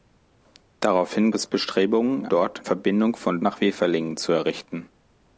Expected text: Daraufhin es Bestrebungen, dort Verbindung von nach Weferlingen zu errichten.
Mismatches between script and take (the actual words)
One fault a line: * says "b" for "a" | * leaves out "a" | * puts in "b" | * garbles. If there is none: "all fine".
all fine